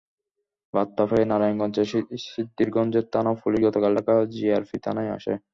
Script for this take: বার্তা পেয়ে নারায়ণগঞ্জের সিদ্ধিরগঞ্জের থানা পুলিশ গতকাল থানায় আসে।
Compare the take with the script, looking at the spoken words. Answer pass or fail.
fail